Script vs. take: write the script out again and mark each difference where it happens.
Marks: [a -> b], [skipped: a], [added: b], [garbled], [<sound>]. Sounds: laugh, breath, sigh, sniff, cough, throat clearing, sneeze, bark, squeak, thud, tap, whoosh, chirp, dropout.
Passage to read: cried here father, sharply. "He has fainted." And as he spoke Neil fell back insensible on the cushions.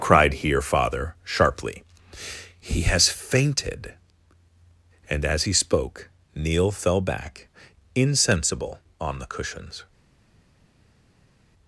cried here father, sharply. "He has fainted." And as he spoke Neil fell back insensible on the cushions.